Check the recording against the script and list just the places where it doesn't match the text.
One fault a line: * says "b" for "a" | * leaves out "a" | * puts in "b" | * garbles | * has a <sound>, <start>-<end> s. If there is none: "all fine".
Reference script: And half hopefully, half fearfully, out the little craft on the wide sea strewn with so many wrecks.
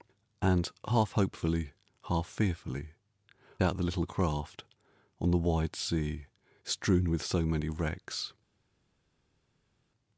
all fine